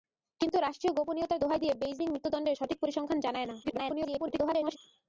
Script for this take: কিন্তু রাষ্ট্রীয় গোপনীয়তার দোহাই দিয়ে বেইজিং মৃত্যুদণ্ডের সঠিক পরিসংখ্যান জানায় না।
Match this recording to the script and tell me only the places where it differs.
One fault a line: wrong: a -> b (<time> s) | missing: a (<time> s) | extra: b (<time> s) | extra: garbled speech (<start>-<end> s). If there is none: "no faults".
extra: garbled speech (3.6-4.8 s)